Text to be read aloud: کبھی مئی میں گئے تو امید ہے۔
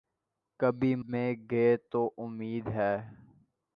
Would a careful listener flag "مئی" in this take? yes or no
yes